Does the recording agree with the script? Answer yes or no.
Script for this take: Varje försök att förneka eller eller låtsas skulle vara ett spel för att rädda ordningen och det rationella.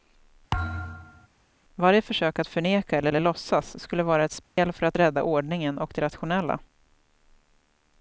yes